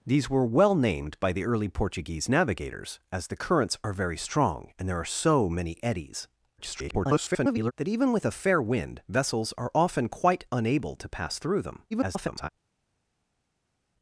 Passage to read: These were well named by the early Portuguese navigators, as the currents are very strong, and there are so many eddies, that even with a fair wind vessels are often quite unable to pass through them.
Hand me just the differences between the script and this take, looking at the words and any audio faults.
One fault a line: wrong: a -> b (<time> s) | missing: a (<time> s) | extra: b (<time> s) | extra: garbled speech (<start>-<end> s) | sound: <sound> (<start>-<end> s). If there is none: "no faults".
extra: garbled speech (6.6-7.7 s)
extra: garbled speech (11.9-12.5 s)